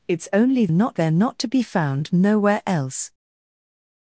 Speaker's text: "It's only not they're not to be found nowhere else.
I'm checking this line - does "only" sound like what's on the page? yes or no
yes